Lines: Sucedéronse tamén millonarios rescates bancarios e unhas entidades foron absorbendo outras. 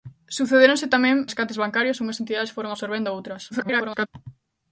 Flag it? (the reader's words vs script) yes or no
yes